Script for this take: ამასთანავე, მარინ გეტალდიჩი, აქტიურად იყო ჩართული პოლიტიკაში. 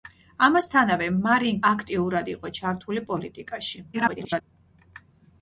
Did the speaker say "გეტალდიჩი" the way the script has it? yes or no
no